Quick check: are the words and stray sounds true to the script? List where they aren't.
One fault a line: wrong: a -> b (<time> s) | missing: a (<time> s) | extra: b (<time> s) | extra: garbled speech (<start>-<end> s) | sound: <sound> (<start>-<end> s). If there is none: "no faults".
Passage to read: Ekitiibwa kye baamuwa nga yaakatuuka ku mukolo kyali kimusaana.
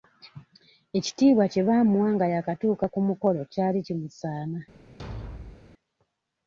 sound: thud (5.0-5.7 s)